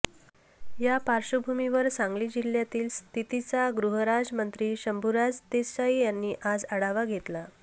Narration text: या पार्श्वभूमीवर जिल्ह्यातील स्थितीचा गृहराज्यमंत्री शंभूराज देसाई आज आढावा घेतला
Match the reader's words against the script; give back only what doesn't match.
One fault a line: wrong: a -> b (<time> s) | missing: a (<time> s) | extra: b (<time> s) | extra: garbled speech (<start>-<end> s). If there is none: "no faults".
extra: सांगली (1.9 s)
extra: यांनी (6.0 s)